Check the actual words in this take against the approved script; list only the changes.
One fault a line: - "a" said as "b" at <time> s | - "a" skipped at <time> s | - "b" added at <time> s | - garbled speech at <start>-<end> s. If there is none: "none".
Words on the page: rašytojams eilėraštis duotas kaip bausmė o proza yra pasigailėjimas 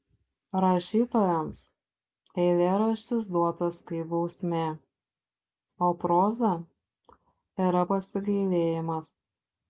none